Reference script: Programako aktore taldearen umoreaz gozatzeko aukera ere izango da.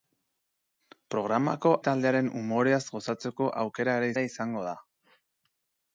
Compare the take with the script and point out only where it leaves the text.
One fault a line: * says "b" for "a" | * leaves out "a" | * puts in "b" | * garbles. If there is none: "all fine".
* leaves out "aktore"
* puts in "ere"